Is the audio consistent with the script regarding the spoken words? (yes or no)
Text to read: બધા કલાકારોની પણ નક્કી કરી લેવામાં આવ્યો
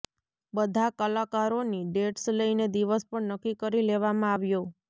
no